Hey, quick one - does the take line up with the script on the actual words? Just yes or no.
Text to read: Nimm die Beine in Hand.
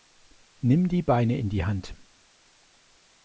no